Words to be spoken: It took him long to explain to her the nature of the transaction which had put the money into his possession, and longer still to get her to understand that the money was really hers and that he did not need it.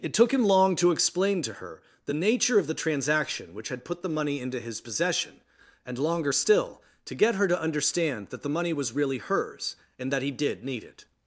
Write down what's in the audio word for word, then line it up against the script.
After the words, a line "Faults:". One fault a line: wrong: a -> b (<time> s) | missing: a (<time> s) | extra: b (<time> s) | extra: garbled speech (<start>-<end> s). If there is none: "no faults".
It took him long to explain to her the nature of the transaction which had put the money into his possession, and longer still to get her to understand that the money was really hers and that he did need it.
Faults:
missing: not (10.6 s)